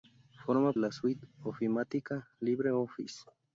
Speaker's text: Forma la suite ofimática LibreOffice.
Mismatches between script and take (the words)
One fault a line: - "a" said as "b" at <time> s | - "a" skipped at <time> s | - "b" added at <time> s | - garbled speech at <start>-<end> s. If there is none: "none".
none